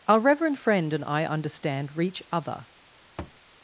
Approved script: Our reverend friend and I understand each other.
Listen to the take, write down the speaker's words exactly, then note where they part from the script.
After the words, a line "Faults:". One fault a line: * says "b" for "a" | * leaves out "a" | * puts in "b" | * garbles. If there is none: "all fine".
Our reverend friend and I understand reach other.
Faults:
* says "reach" for "each"